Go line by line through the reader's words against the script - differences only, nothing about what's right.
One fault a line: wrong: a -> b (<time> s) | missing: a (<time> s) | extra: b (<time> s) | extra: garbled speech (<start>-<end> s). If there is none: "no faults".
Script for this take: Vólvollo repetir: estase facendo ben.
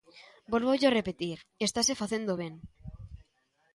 no faults